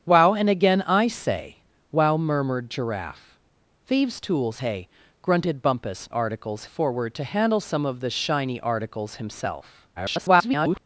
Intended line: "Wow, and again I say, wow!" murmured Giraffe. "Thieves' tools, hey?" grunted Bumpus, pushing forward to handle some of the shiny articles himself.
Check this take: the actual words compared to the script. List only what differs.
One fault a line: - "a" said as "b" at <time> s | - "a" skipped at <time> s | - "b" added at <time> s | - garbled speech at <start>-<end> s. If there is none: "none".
- "pushing" said as "articles" at 6.1 s
- garbled speech at 10.0-10.9 s